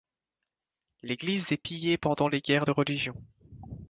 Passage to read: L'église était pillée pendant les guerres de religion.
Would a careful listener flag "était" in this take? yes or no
yes